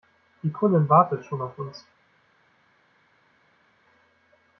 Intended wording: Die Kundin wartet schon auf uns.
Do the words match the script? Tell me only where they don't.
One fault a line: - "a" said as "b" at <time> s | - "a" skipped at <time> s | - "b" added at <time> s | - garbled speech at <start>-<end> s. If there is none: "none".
none